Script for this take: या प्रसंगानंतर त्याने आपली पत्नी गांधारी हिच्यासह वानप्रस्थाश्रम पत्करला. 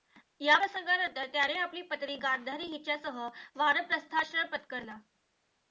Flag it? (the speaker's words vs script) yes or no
no